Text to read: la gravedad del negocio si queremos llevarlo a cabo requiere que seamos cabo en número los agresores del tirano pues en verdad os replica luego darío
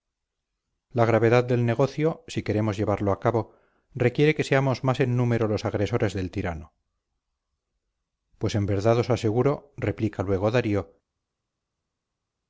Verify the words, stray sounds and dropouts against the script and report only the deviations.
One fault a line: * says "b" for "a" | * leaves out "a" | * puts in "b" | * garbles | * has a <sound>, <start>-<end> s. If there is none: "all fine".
* says "más" for "cabo"
* puts in "aseguro"